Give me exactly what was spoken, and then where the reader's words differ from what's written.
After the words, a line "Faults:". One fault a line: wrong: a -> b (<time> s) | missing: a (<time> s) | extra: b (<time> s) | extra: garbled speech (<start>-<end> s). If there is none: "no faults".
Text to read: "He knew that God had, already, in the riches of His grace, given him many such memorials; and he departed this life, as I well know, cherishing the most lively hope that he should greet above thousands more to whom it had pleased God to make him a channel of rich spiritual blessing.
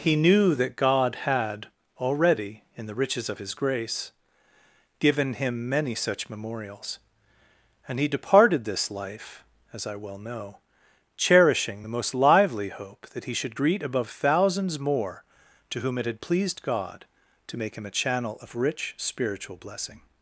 "He knew that God had, already, in the riches of His grace, given him many such memorials; and he departed this life, as I well know, cherishing the most lively hope that he should greet above thousands more to whom it had pleased God to make him a channel of rich spiritual blessing.
Faults:
no faults